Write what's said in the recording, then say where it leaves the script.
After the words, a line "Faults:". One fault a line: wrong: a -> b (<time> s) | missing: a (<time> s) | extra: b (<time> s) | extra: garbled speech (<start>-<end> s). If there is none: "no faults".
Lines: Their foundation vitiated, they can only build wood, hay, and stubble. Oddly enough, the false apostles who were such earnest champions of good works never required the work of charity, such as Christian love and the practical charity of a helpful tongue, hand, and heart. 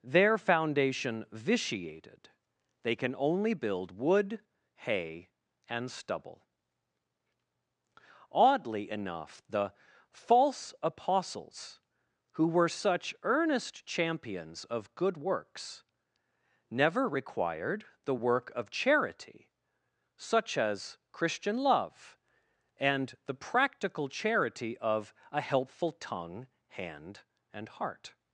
Their foundation vitiated, they can only build wood, hay, and stubble. Oddly enough, the false apostles who were such earnest champions of good works never required the work of charity, such as Christian love and the practical charity of a helpful tongue, hand, and heart.
Faults:
no faults